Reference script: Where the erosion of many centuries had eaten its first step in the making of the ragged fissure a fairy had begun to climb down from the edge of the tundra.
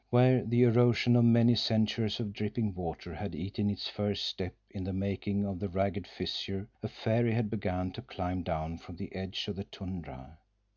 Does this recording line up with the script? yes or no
no